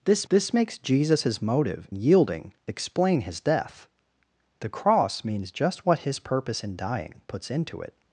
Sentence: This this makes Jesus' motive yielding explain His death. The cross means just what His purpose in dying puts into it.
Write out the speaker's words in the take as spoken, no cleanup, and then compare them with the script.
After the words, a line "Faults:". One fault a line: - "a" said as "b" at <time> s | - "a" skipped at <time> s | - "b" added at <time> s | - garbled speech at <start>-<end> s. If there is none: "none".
This this makes Jesus' motive yielding explain His death. The cross means just what His purpose in dying puts into it.
Faults:
none